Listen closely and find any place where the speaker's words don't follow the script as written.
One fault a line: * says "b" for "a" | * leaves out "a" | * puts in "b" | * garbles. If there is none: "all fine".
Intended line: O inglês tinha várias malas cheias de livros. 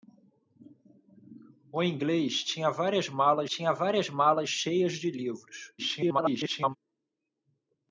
* puts in "tinha várias malas"
* garbles